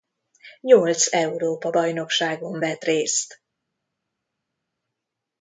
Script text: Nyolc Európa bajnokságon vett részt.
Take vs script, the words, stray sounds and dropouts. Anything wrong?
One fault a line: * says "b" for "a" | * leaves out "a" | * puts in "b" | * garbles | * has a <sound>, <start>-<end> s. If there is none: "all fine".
all fine